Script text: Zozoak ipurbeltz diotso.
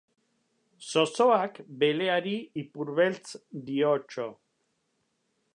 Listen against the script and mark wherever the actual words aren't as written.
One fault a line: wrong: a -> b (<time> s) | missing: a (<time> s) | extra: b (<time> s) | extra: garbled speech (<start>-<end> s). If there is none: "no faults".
extra: beleari (1.8 s)